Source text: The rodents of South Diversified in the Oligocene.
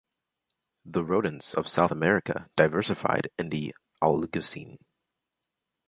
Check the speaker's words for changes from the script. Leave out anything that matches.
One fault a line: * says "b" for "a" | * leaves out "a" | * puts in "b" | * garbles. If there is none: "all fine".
* puts in "America"